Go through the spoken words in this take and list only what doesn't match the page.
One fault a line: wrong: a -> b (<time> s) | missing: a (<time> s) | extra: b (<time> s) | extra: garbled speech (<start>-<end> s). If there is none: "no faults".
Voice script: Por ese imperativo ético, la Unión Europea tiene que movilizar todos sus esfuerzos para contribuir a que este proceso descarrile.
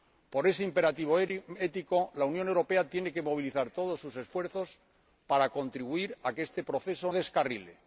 no faults